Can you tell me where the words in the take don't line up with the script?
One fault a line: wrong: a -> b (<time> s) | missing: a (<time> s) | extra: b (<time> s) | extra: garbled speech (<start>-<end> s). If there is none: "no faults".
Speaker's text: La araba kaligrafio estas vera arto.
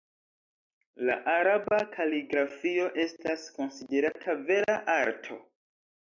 extra: konsiderata (3.6 s)